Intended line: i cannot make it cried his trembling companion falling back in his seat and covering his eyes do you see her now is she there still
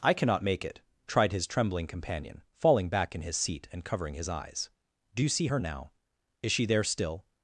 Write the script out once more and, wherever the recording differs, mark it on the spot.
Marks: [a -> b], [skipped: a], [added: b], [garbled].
i cannot make it [cried -> tried] his trembling companion falling back in his seat and covering his eyes do you see her now is she there still